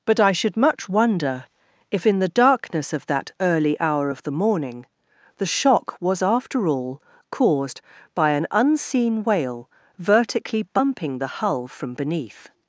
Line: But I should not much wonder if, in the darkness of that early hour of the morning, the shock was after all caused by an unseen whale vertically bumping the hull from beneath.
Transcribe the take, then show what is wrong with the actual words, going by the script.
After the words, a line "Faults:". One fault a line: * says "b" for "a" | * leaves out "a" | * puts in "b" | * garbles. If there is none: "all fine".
But I should much wonder if, in the darkness of that early hour of the morning, the shock was after all caused by an unseen whale vertically bumping the hull from beneath.
Faults:
* leaves out "not"